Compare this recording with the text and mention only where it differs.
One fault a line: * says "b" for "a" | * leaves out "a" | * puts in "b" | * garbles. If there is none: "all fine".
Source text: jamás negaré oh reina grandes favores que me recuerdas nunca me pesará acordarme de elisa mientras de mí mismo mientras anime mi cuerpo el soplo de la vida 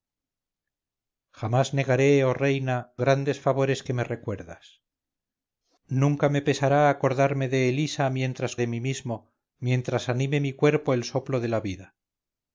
all fine